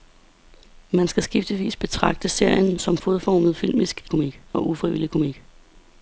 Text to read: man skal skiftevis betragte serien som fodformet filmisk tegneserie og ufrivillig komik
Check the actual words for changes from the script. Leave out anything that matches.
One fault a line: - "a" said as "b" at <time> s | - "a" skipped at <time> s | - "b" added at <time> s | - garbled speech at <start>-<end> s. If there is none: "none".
- "tegneserie" said as "komik" at 4.1 s